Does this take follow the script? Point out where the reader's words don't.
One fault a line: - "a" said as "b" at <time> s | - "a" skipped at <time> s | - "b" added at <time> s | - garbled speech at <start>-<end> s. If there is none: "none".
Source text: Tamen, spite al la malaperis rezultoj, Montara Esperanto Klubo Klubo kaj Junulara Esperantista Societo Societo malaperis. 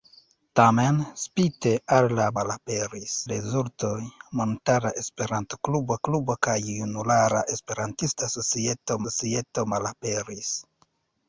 none